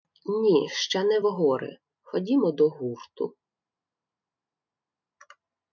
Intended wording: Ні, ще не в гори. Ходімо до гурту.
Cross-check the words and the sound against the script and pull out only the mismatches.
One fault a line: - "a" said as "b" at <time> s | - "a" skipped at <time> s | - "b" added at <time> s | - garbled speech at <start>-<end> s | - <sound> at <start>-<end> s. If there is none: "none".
none